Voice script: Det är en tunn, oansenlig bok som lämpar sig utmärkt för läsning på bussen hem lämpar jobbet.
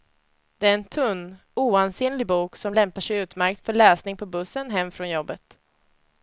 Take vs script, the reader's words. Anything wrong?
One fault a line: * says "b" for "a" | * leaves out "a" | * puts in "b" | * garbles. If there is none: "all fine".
* says "från" for "lämpar"